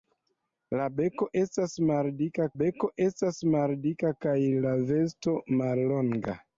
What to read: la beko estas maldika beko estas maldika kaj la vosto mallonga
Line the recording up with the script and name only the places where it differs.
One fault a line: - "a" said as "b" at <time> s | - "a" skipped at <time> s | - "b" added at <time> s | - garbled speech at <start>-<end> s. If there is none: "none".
none